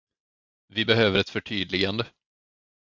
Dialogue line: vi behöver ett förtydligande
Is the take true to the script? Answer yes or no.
yes